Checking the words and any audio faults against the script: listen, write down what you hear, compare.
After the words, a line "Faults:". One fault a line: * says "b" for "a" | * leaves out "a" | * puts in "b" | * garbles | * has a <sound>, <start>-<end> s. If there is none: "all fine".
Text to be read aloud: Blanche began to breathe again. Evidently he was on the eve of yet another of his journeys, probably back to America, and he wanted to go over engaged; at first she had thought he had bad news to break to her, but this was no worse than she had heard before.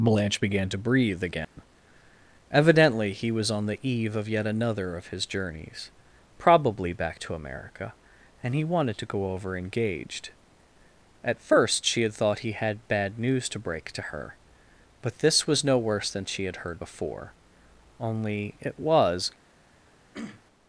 Blanche began to breathe again. Evidently he was on the eve of yet another of his journeys, probably back to America, and he wanted to go over engaged; at first she had thought he had bad news to break to her, but this was no worse than she had heard before. Only it was
Faults:
* has a dropout, 1.4-1.6 s
* puts in "Only it was"
* has a throat clearing, 20.1-20.4 s